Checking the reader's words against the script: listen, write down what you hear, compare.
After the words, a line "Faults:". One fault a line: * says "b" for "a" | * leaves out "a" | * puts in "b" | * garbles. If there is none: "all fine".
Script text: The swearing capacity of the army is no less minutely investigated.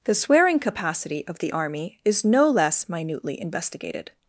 The swearing capacity of the army is no less minutely investigated.
Faults:
all fine